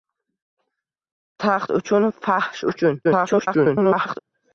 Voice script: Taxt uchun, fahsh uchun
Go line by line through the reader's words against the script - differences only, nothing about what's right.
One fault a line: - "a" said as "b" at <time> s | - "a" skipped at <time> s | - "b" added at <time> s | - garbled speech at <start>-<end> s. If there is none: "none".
- garbled speech at 3.0-4.2 s